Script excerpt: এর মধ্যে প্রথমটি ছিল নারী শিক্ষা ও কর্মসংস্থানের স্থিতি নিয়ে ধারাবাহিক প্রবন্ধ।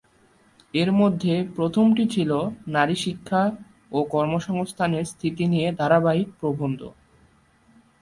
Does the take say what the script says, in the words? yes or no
yes